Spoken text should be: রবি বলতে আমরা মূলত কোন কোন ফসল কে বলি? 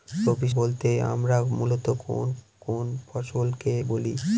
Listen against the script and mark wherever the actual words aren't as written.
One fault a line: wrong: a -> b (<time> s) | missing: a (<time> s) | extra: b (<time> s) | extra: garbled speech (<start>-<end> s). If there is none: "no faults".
no faults